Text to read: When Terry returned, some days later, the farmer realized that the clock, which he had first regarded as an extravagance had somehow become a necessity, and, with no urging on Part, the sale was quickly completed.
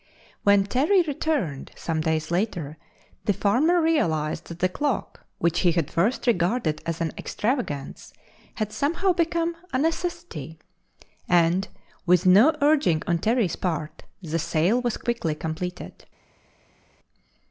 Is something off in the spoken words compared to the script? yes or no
yes